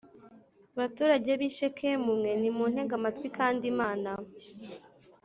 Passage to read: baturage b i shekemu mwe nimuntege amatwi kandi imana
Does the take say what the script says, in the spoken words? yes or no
yes